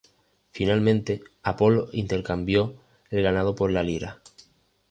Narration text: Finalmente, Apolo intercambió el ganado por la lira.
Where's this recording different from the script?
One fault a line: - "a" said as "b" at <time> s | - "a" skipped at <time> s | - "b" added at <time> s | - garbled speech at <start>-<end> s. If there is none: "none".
none